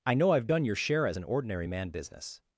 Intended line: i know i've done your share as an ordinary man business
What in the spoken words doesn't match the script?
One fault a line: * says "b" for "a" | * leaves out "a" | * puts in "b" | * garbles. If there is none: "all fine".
all fine